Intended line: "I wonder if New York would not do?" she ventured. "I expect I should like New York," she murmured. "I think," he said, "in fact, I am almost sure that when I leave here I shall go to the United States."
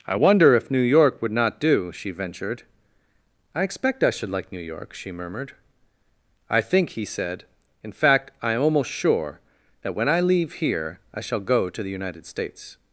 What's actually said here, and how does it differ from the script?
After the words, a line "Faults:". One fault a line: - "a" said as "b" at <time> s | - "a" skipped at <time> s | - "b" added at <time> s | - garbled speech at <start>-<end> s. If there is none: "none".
"I wonder if New York would not do?" she ventured. "I expect I should like New York," she murmured. "I think," he said, "in fact, I am almost sure that when I leave here I shall go to the United States."
Faults:
none